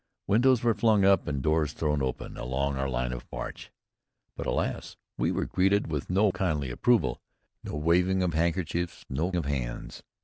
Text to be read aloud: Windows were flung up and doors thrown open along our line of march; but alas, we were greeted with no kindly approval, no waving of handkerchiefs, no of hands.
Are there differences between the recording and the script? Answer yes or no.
no